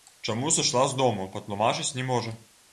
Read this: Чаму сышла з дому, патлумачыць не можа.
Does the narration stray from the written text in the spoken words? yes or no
no